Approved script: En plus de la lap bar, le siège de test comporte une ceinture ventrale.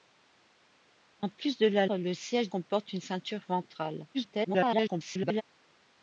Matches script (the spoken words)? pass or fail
fail